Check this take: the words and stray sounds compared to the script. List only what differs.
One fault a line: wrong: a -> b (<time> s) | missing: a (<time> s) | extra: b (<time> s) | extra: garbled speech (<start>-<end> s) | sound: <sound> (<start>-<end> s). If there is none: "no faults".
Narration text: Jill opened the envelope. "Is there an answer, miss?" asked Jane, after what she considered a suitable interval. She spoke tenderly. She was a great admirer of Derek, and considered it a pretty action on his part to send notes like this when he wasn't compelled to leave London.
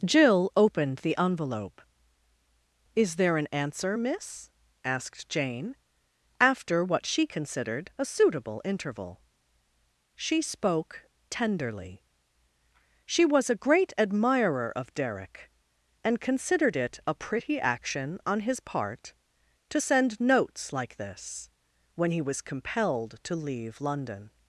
wrong: wasn't -> was (22.2 s)